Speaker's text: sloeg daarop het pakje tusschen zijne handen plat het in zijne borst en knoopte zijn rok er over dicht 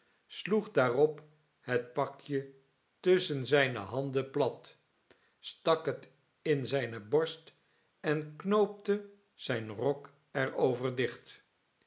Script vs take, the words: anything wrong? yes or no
yes